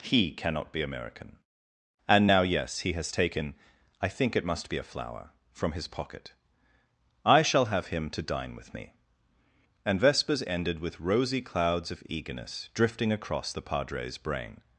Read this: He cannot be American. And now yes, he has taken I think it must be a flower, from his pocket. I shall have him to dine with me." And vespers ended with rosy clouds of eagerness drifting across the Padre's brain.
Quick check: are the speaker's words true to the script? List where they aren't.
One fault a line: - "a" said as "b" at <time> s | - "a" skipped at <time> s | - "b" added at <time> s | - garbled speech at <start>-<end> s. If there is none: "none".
none